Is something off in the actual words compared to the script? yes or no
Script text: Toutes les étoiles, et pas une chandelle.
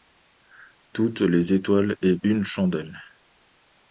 yes